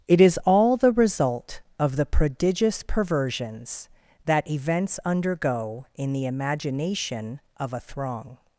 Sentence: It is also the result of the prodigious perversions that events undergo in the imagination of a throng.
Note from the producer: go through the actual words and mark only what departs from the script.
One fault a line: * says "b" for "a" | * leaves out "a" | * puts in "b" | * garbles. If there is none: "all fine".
* says "all" for "also"